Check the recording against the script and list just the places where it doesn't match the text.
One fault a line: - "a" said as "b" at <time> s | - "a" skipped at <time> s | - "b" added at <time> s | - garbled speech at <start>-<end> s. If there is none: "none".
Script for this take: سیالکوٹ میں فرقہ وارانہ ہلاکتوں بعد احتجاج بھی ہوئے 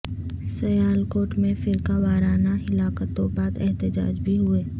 none